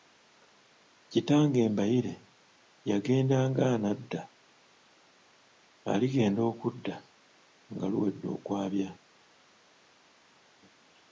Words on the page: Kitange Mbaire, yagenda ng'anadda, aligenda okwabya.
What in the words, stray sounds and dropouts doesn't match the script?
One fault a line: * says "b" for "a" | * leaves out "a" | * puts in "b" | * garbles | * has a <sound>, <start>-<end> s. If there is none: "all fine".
* puts in "okudda nga luwedde"